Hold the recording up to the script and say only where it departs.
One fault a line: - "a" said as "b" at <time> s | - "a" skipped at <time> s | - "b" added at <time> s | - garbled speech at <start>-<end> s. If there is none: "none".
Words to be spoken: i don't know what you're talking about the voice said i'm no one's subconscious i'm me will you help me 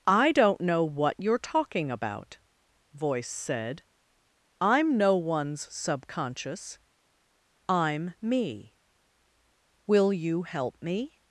- "the" skipped at 2.4 s